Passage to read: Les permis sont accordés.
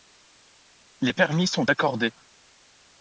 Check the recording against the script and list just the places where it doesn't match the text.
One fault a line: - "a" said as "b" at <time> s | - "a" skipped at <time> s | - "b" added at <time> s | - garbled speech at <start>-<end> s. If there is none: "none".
none